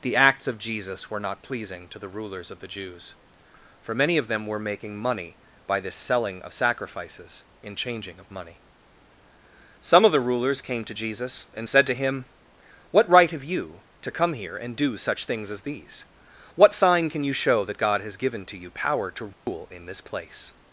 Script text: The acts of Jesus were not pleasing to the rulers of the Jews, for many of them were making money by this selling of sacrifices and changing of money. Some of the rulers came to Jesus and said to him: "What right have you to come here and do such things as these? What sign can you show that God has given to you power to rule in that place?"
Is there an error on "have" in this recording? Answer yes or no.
no